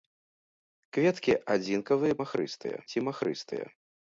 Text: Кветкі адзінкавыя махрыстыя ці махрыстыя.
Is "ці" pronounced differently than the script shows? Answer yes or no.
no